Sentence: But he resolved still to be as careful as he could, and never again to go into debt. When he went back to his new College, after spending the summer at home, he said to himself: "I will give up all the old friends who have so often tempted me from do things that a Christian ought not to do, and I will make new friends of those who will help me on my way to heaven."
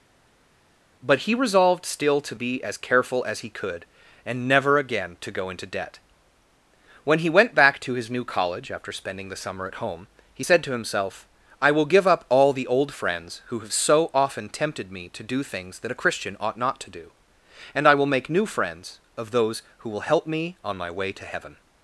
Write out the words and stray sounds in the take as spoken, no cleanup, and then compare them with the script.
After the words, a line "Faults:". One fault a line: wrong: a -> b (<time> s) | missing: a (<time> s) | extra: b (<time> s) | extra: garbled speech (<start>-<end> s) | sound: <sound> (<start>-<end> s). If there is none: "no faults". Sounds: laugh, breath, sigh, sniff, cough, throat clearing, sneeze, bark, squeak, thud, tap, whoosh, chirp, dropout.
But he resolved still to be as careful as he could, and never again to go into debt. When he went back to his new College, after spending the summer at home, he said to himself: "I will give up all the old friends who have so often tempted me to do things that a Christian ought not to do, and I will make new friends of those who will help me on my way to heaven."
Faults:
wrong: from -> to (15.1 s)